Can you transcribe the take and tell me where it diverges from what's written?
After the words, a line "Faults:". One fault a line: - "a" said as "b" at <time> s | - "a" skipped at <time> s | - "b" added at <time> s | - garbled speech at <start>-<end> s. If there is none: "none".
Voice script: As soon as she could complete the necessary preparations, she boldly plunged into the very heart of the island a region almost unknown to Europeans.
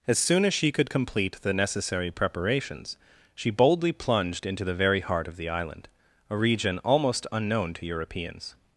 As soon as she could complete the necessary preparations, she boldly plunged into the very heart of the island a region almost unknown to Europeans.
Faults:
none